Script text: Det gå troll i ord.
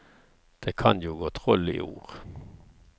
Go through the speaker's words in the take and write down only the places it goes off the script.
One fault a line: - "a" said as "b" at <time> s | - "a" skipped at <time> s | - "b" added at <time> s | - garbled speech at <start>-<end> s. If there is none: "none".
- "kan jo" added at 0.8 s